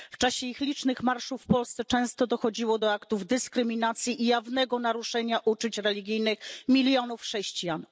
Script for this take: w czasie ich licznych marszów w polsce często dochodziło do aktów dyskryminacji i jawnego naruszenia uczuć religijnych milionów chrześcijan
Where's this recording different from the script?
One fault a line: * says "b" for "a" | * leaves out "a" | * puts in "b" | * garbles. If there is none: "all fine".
all fine